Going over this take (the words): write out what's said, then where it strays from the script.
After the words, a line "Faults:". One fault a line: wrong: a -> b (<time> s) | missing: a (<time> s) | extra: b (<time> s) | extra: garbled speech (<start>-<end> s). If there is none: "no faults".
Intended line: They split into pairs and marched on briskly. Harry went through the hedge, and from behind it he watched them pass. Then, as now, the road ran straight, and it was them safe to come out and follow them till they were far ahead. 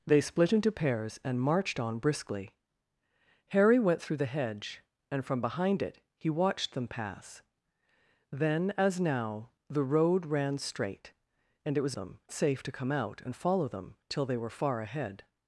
They split into pairs and marched on briskly. Harry went through the hedge, and from behind it he watched them pass. Then, as now, the road ran straight, and it was them safe to come out and follow them till they were far ahead.
Faults:
no faults